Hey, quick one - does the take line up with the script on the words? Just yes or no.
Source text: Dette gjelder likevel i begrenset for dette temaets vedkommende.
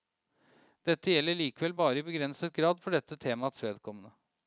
no